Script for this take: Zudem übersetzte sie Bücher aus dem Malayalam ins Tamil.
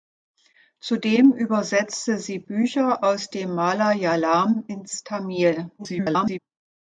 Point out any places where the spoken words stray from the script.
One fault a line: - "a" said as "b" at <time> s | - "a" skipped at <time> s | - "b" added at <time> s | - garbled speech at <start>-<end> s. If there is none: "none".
- garbled speech at 5.8-6.4 s